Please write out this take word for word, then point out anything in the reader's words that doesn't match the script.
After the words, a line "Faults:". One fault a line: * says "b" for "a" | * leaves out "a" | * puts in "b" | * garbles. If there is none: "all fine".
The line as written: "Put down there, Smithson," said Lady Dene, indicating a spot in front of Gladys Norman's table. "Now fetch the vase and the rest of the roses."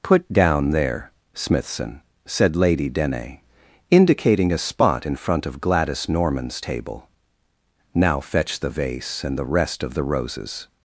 "Put down there, Smithson," said Lady Dene, indicating a spot in front of Gladys Norman's table. "Now fetch the vase and the rest of the roses."
Faults:
all fine